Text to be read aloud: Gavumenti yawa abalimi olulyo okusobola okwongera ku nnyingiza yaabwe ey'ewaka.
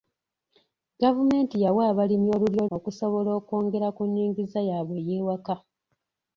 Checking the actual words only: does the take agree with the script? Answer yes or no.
yes